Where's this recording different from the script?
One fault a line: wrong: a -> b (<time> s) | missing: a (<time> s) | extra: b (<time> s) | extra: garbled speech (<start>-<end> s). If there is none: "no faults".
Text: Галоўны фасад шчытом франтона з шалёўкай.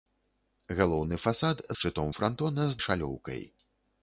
no faults